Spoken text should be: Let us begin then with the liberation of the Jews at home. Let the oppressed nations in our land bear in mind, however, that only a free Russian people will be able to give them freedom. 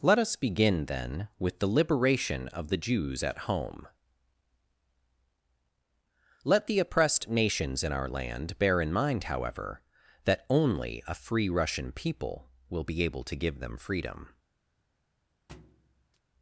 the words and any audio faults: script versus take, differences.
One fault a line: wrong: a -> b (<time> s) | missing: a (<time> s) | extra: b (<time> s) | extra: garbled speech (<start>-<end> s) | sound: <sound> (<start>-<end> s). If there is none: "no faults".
sound: thud (15.5-16.2 s)